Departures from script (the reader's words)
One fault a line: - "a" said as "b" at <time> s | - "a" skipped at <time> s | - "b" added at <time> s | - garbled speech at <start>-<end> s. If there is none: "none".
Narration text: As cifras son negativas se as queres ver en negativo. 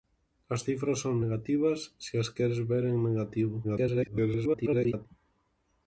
- garbled speech at 3.6-5.1 s